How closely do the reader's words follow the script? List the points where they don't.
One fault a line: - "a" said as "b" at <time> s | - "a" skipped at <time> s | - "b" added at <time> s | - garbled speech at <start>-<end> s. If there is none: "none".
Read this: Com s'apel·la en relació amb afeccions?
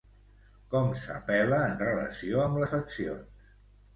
none